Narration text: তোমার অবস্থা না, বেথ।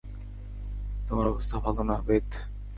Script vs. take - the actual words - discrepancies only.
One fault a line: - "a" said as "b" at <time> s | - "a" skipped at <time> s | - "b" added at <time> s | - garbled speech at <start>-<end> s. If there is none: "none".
- "ভালো" added at 1.6 s